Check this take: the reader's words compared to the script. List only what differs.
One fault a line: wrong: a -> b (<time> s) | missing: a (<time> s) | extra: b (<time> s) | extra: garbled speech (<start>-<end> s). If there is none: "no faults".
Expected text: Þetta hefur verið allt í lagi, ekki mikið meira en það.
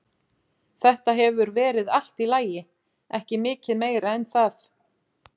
no faults